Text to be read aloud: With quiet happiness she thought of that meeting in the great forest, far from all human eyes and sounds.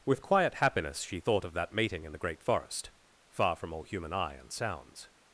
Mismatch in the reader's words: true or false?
true